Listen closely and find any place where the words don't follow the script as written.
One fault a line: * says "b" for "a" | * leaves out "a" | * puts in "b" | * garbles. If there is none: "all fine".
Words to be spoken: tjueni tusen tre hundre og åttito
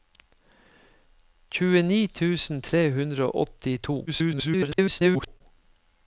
* garbles